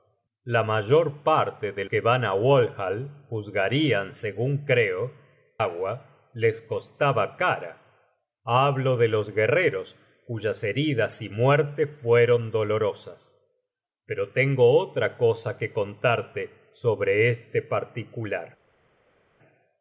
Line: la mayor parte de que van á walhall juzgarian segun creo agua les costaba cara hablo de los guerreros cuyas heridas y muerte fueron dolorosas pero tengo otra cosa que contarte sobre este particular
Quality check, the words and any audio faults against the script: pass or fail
pass